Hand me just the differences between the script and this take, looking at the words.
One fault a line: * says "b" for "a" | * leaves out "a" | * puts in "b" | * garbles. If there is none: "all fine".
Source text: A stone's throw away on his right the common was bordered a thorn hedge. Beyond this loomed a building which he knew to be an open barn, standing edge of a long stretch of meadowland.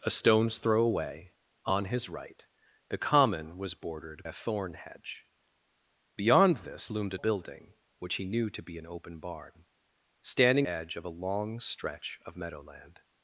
all fine